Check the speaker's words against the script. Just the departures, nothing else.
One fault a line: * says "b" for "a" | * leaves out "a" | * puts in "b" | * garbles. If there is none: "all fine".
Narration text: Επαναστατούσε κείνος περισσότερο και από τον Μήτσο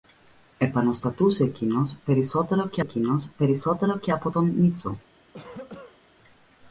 * puts in "κείνος περισσότερο και"